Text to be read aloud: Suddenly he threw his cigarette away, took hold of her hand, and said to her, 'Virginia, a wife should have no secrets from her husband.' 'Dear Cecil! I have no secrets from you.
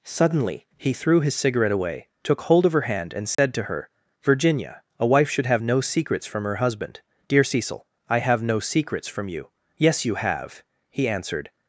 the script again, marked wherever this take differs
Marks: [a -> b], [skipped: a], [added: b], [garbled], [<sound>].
Suddenly he threw his cigarette away, took hold of her hand, and said [dropout] to her, 'Virginia, a wife should have no secrets from her husband.' 'Dear Cecil! I have no secrets from you. [added: Yes you have he answered]